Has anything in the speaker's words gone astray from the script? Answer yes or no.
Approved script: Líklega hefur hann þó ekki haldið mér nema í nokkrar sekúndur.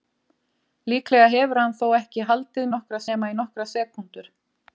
yes